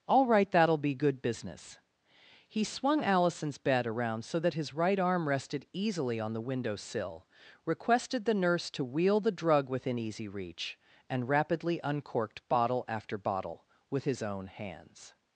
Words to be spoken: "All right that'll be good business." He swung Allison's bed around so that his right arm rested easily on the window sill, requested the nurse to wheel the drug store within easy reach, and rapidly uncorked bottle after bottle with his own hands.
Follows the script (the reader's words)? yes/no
no